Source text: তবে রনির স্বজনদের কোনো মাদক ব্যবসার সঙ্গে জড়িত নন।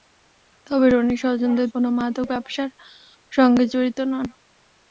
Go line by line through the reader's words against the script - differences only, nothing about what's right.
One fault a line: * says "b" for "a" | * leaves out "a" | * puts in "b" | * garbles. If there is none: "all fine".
all fine